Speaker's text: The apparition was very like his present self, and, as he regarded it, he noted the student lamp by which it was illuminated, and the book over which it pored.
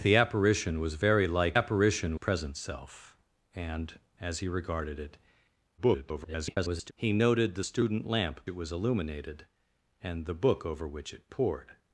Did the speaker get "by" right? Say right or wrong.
wrong